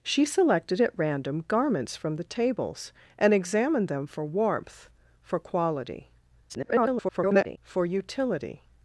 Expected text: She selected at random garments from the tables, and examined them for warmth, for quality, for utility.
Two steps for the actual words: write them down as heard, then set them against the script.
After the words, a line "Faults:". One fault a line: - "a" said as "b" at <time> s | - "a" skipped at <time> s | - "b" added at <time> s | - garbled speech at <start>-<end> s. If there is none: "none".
She selected at random garments from the tables, and examined them for warmth, for quality, [garbled] for utility.
Faults:
- garbled speech at 6.5-7.6 s